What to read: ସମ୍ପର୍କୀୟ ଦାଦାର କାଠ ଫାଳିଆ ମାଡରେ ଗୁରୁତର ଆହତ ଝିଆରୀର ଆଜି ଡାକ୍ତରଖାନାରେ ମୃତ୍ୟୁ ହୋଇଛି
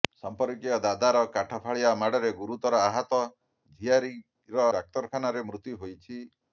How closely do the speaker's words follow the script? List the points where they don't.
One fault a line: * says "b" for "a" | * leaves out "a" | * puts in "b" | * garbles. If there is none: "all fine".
* leaves out "ଆଜି"